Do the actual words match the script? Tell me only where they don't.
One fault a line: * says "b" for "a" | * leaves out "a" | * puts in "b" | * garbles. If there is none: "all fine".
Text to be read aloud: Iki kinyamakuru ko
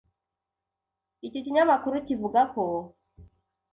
* puts in "kivuga"